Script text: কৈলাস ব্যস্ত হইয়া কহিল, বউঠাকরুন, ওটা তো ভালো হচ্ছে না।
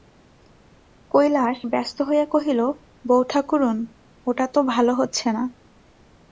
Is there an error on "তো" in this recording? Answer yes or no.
no